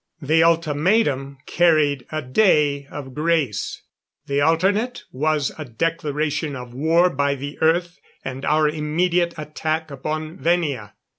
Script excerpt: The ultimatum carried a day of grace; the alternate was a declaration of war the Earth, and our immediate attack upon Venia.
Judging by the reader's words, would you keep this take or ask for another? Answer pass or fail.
fail